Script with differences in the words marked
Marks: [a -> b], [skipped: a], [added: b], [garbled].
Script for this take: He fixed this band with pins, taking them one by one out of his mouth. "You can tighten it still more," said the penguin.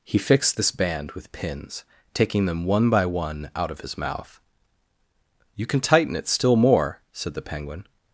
He fixed this band with pins, taking them one by one out of his mouth. "You can tighten it still more," said the penguin.